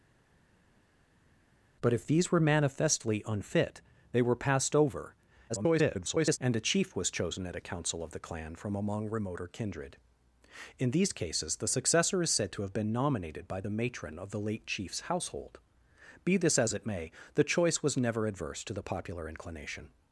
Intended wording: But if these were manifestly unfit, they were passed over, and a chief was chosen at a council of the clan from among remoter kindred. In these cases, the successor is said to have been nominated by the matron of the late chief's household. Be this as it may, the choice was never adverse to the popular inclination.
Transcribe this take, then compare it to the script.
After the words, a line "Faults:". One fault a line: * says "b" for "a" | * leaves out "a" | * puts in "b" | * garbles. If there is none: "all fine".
But if these were manifestly unfit, they were passed over, [garbled] and a chief was chosen at a council of the clan from among remoter kindred. In these cases, the successor is said to have been nominated by the matron of the late chief's household. Be this as it may, the choice was never adverse to the popular inclination.
Faults:
* garbles